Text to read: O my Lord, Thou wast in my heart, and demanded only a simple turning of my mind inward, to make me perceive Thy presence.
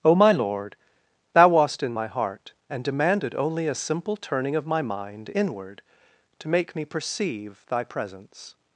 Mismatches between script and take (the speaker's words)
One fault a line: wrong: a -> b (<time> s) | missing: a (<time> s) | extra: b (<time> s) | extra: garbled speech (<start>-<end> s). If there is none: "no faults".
no faults